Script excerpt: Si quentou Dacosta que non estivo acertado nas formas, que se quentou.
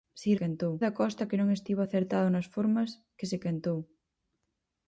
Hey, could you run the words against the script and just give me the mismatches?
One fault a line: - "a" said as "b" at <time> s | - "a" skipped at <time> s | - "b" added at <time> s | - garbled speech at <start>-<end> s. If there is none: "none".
none